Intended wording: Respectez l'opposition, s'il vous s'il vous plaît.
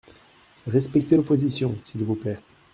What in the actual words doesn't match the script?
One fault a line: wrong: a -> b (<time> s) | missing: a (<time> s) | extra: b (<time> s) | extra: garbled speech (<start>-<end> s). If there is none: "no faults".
missing: s'il vous (2.2 s)